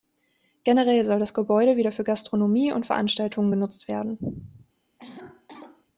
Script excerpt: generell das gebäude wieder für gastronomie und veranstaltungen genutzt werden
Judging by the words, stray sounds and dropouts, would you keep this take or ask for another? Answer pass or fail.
fail